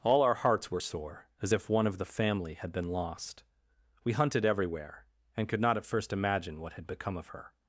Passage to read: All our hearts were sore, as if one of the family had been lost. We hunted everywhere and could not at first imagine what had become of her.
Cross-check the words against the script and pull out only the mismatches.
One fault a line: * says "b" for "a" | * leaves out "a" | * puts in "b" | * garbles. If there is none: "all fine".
all fine